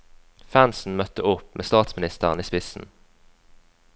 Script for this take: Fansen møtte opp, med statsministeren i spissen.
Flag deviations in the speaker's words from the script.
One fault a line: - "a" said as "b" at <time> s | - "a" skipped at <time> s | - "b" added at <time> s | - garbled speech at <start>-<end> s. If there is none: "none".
none